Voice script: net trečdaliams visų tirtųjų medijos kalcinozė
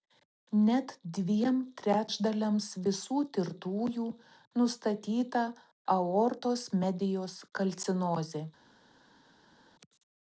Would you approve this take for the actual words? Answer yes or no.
no